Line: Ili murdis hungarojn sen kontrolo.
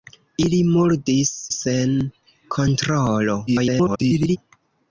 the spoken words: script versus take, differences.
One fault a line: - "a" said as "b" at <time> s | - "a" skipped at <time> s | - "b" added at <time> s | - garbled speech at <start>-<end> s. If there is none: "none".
- "hungarojn" skipped at 1.3 s
- garbled speech at 3.5-4.4 s